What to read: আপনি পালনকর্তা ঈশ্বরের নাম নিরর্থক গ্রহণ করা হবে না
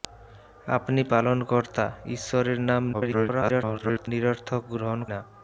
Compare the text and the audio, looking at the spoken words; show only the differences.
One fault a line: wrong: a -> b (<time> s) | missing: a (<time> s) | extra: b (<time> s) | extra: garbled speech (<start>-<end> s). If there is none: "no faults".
extra: garbled speech (2.9-4.1 s)
missing: করা হবে (5.0 s)